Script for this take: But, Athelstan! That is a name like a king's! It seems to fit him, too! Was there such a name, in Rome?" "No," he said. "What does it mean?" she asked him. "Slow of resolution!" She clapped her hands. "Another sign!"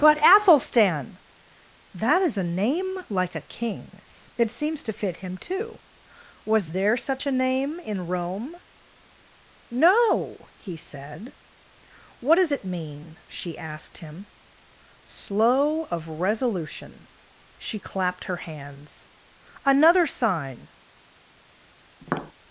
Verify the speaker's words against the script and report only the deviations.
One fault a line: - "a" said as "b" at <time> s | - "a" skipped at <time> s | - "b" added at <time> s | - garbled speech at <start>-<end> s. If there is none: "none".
none